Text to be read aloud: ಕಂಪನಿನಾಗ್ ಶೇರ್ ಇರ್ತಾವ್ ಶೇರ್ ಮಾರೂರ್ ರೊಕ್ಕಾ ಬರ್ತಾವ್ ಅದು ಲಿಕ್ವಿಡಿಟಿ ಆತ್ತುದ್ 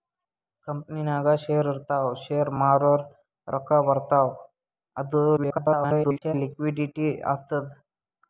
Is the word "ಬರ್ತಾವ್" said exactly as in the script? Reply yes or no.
yes